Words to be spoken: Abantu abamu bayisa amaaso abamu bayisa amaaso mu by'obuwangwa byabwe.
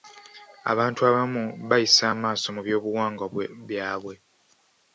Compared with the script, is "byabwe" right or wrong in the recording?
right